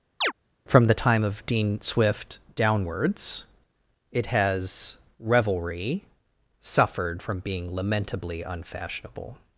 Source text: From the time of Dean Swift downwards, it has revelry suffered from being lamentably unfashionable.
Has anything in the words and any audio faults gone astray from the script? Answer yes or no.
yes